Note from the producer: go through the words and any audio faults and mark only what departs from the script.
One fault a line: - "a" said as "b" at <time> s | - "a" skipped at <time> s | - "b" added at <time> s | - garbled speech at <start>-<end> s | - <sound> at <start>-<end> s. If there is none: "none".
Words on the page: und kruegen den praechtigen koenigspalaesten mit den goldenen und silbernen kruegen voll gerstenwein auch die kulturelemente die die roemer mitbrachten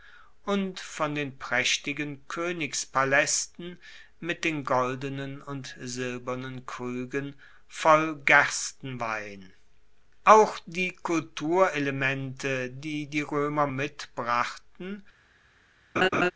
- "kruegen" said as "von" at 0.8 s
- laugh at 16.0-16.3 s